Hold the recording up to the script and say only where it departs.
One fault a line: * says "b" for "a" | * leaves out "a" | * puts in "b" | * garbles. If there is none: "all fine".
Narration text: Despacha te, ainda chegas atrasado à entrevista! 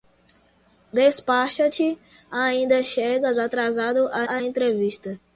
* puts in "à"